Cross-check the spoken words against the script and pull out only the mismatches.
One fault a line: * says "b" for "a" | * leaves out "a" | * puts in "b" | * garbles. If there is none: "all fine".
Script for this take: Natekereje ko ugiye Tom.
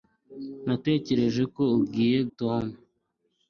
all fine